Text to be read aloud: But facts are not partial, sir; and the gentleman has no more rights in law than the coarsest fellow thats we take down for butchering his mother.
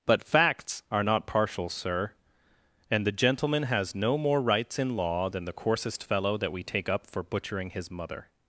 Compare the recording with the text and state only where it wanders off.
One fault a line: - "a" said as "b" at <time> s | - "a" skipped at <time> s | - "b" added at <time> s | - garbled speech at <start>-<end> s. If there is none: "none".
- "thats" said as "that" at 6.4 s
- "down" said as "up" at 6.9 s